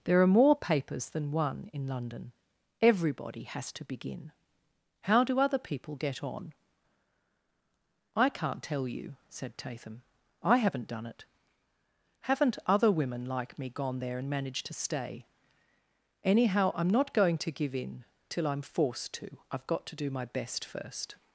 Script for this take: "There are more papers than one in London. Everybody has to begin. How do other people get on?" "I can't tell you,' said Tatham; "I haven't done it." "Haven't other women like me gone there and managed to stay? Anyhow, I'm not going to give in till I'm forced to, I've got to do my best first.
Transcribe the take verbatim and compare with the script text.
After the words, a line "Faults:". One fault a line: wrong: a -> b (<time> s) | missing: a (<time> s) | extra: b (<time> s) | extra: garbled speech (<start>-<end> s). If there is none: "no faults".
"There are more papers than one in London. Everybody has to begin. How do other people get on?" "I can't tell you,' said Tatham; "I haven't done it." "Haven't other women like me gone there and managed to stay? Anyhow, I'm not going to give in till I'm forced to, I've got to do my best first.
Faults:
no faults